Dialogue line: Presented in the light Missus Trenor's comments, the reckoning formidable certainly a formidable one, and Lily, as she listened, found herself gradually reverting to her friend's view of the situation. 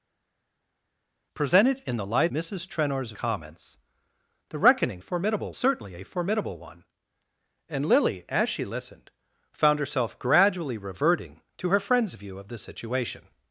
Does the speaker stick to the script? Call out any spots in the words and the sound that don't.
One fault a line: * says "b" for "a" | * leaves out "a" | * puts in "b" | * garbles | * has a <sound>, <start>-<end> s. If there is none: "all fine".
all fine